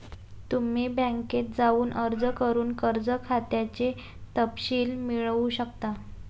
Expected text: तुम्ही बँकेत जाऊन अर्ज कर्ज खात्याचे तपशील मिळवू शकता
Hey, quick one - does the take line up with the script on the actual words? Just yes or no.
no